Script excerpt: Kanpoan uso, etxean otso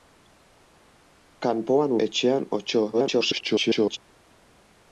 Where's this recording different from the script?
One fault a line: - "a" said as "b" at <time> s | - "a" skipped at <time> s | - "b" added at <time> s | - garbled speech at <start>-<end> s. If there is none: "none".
- "uso" skipped at 1.9 s
- garbled speech at 2.9-4.0 s